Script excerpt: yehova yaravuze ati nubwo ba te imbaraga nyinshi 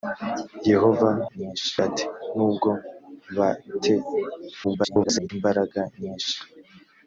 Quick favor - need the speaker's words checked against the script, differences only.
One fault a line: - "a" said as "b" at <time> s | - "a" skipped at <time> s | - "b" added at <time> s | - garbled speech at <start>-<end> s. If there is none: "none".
- "yaravuze" said as "nyinshi" at 1.4 s
- garbled speech at 4.6-5.3 s